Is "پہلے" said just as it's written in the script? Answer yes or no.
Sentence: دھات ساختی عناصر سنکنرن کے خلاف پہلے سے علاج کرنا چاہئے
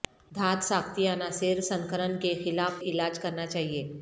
no